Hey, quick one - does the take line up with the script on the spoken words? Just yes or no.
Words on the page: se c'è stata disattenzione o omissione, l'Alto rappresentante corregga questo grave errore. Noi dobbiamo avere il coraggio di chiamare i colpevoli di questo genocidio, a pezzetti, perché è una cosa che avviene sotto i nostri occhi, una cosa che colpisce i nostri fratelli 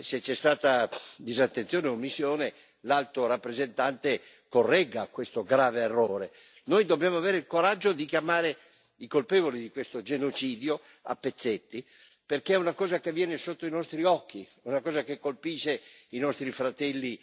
yes